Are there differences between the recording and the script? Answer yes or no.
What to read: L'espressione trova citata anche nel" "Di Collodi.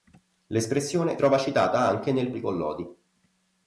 no